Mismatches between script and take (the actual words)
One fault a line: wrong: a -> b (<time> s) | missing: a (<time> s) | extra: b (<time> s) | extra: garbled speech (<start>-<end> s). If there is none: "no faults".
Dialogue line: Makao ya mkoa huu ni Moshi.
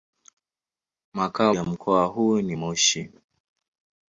no faults